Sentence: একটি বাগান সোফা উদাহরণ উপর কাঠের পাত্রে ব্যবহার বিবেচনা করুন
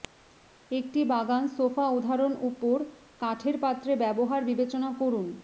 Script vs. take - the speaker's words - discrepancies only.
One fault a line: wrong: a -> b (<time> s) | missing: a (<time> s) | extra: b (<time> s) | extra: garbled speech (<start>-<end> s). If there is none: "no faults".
no faults